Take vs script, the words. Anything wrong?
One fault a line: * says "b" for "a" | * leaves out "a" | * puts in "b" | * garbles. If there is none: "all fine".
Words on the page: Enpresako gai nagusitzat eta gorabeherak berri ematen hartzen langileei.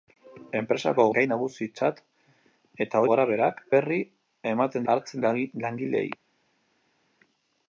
all fine